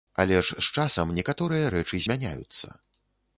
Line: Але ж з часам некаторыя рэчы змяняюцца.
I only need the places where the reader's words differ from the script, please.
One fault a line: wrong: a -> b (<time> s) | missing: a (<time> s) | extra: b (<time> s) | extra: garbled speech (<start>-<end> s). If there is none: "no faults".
no faults